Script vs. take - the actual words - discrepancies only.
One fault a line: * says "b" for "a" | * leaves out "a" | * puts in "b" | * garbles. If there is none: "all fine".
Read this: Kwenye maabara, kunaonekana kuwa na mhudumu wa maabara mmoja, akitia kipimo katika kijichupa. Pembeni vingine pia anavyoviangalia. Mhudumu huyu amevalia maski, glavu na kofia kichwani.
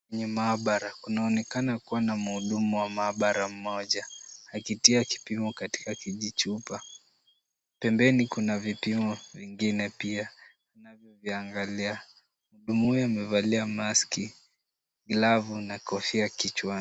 * puts in "kuna vipimo"